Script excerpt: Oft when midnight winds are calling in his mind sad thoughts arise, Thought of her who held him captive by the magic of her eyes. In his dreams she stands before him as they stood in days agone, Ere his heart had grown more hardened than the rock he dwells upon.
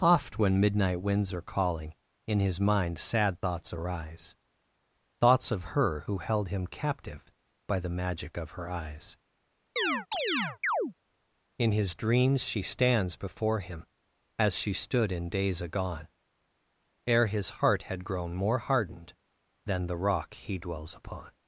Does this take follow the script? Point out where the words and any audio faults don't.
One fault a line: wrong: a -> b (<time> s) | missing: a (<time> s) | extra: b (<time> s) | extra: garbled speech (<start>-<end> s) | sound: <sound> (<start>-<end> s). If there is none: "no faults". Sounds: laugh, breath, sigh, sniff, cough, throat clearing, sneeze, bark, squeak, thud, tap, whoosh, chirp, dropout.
wrong: Thought -> Thoughts (5.2 s)
sound: chirp (9.8-10.9 s)
wrong: they -> she (14.6 s)